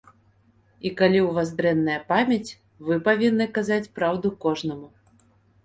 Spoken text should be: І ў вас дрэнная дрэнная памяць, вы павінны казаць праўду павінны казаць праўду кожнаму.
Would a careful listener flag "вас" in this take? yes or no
no